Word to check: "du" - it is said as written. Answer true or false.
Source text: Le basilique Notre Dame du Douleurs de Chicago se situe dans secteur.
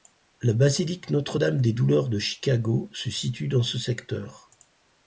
false